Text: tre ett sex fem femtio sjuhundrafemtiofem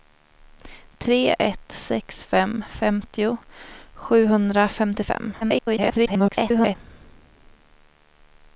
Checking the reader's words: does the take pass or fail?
fail